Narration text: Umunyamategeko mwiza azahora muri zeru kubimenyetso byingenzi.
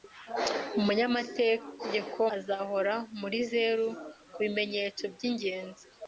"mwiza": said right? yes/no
no